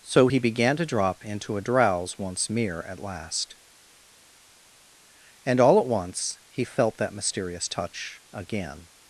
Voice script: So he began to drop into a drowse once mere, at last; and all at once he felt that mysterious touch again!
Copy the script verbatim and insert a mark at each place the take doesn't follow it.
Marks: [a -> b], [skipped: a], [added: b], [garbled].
So he began to drop into a drowse once mere, at last; and all at once he felt that mysterious touch again!